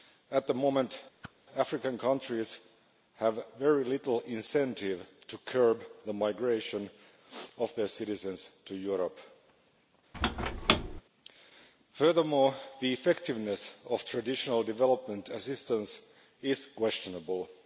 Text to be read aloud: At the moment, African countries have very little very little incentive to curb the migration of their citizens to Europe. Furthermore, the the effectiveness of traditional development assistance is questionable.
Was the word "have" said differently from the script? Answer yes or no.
no